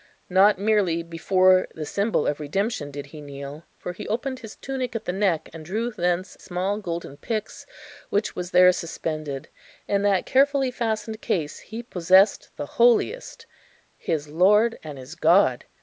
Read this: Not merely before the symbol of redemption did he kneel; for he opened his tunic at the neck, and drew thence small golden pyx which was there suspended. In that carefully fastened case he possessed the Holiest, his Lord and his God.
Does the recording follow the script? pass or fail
pass